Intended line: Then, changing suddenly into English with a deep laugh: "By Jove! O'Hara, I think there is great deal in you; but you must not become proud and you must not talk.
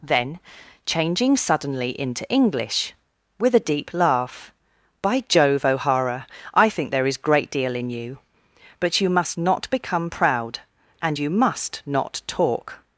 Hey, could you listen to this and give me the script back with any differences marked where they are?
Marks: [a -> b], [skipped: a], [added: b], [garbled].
Then, changing suddenly into English with a deep laugh: "By Jove! O'Hara, I think there is great deal in you; but you must not become proud and you must not talk.